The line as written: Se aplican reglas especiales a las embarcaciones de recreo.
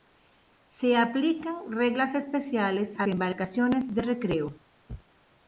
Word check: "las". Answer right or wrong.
wrong